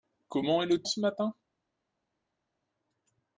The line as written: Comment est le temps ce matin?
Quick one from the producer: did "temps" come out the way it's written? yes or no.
no